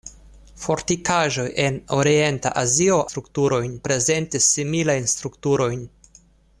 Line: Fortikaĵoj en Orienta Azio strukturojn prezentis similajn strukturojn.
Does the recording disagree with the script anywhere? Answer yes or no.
no